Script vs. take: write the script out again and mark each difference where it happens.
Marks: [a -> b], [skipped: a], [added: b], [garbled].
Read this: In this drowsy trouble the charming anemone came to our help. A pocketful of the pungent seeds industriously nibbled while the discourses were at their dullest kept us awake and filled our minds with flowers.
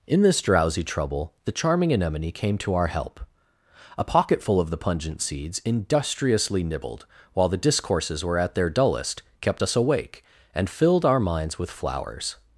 In this drowsy trouble the charming anemone came to our help. A pocketful of the pungent seeds industriously nibbled while the discourses were at their dullest kept us awake and filled our minds with flowers.